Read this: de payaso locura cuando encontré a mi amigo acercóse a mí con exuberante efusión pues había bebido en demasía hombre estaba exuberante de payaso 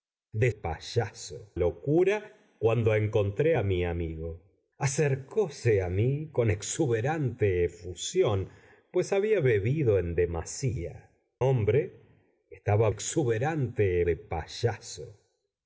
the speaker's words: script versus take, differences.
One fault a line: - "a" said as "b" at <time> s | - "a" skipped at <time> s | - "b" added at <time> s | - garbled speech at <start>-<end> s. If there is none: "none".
none